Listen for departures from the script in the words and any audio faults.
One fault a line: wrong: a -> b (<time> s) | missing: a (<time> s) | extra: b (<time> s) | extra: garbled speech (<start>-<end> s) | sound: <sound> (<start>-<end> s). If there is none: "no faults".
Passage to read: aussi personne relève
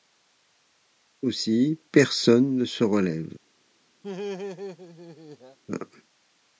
extra: ne se (2.5 s)
sound: laugh (4.0-5.6 s)